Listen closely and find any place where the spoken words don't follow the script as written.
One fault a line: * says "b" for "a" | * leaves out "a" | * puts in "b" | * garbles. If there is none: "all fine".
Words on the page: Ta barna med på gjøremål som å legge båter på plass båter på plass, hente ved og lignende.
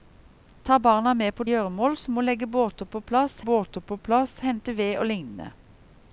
all fine